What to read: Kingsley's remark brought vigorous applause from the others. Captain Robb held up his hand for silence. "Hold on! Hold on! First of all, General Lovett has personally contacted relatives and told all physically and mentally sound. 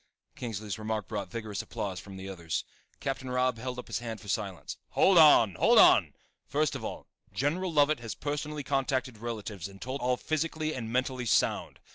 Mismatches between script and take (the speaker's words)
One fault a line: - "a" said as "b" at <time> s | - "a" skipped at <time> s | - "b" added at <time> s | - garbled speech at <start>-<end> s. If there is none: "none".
none